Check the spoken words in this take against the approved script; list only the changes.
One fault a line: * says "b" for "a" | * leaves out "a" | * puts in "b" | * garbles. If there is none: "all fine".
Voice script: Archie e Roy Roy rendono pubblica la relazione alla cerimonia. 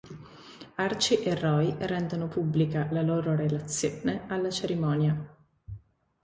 * leaves out "Roy"
* puts in "loro"